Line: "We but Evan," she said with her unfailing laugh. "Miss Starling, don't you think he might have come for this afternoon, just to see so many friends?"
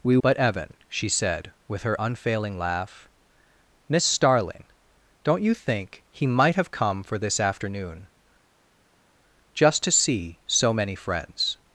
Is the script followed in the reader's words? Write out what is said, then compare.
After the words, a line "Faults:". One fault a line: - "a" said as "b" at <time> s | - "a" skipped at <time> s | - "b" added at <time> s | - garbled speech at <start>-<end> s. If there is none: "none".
"We but Evan," she said with her unfailing laugh. "Miss Starling, don't you think he might have come for this afternoon, just to see so many friends?"
Faults:
none